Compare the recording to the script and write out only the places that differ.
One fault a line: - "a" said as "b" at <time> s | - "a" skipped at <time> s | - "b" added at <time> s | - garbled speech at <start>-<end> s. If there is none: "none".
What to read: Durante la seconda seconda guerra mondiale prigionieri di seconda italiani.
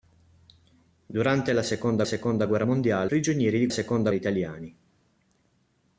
none